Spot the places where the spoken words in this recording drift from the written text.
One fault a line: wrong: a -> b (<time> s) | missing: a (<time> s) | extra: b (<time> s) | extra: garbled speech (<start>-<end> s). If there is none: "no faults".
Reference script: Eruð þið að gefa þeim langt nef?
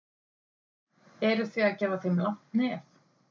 no faults